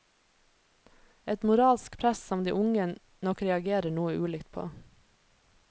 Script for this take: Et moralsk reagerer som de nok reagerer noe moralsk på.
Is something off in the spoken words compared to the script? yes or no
yes